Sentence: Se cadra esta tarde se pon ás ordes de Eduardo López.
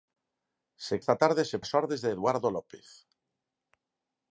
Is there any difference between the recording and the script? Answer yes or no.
yes